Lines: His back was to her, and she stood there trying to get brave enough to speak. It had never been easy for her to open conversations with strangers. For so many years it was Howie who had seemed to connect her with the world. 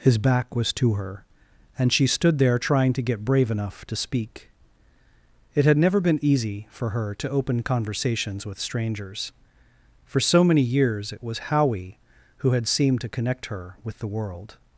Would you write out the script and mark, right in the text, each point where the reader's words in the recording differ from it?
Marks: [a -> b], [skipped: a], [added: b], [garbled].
His back was to her, and she stood there trying to get brave enough to speak. It had never been easy for her to open conversations with strangers. For so many years it was Howie who had seemed to connect her with the world.